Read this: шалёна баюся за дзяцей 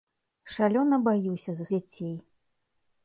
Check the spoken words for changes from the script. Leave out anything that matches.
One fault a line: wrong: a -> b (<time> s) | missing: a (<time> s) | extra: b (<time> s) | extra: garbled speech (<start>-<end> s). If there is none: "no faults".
no faults